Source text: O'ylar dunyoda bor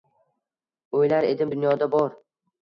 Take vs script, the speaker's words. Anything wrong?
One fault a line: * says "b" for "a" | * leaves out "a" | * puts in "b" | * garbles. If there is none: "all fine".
* puts in "edim"